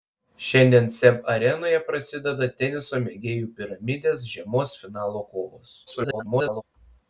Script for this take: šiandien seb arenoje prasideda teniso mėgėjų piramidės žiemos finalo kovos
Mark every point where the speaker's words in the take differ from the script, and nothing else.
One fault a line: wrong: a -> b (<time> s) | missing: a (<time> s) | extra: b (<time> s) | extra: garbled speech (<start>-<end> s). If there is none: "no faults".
extra: garbled speech (5.9-6.6 s)